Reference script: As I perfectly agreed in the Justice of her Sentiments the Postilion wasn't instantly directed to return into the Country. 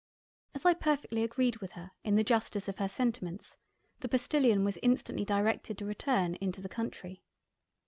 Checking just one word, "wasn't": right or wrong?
wrong